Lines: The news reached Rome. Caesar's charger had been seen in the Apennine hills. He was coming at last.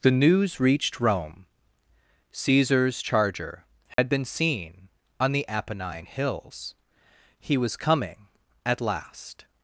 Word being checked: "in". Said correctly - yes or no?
no